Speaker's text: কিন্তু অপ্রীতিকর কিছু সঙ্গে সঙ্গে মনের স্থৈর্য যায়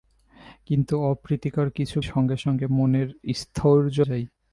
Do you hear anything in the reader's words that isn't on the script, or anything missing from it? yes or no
no